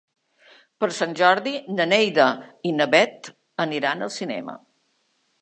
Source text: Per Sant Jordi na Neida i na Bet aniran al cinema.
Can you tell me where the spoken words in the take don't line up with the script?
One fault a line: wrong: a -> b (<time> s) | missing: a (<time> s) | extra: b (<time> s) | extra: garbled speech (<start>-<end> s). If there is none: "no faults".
no faults